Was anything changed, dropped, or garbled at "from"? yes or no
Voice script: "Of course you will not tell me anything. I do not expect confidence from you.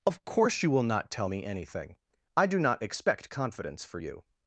yes